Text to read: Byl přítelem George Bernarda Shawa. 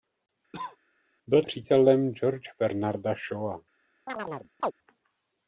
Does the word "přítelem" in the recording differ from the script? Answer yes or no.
no